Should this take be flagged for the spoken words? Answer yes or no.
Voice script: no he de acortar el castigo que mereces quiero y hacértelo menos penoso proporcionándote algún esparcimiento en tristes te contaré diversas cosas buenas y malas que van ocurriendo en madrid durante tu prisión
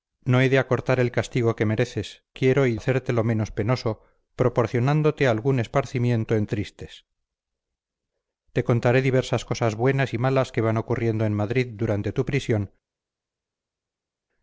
no